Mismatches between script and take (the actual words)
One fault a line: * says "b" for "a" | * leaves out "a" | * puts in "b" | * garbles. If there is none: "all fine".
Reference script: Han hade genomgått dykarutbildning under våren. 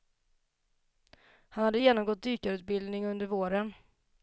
all fine